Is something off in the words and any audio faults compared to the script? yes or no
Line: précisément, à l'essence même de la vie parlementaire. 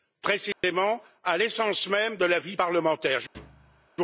yes